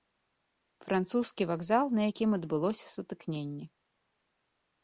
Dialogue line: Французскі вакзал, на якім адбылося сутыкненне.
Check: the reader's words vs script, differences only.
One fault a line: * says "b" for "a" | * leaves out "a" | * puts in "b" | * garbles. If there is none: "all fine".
all fine